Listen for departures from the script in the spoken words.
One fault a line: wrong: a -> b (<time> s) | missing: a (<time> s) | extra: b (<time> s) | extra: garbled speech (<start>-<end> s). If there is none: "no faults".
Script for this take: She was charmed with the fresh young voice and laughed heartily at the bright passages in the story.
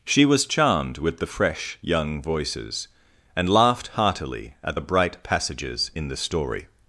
wrong: voice -> voices (2.2 s)